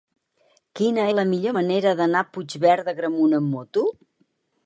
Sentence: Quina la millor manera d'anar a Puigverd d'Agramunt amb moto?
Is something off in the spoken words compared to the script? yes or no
no